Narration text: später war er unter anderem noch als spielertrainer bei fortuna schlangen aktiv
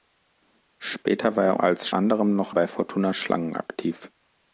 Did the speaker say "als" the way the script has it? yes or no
no